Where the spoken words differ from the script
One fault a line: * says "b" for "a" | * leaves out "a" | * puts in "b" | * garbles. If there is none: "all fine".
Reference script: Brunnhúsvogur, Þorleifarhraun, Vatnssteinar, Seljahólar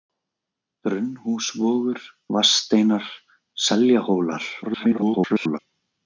* leaves out "Þorleifarhraun"
* garbles